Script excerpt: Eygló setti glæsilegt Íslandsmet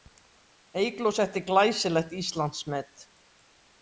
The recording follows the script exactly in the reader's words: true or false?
true